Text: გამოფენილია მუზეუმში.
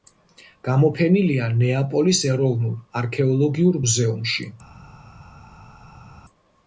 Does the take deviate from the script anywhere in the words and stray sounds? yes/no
yes